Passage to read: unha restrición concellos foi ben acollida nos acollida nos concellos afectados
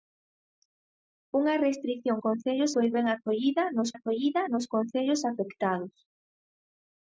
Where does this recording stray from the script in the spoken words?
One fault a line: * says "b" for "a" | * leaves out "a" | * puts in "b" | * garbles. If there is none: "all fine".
all fine